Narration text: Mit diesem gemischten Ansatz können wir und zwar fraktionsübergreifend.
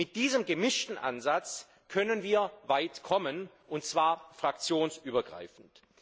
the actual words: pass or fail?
fail